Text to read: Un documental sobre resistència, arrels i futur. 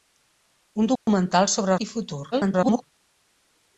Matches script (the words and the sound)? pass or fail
fail